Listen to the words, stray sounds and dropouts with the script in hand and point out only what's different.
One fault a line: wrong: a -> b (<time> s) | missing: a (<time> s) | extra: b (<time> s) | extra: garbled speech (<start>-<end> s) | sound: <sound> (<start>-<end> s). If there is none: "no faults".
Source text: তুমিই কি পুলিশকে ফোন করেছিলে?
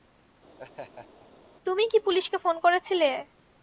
sound: laugh (0.6-1.3 s)